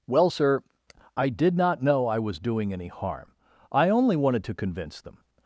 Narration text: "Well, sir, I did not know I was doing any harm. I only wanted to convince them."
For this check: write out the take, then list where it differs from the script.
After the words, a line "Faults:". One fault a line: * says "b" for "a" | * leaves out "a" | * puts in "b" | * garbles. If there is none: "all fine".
"Well, sir, I did not know I was doing any harm. I only wanted to convince them."
Faults:
all fine